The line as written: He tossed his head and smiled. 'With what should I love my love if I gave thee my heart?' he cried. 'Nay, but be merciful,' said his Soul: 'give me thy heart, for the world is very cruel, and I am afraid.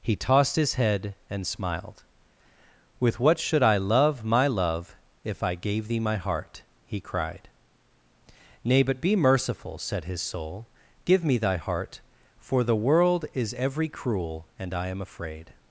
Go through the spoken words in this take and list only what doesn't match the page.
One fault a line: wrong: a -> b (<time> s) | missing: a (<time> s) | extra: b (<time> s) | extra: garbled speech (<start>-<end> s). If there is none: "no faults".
wrong: very -> every (13.6 s)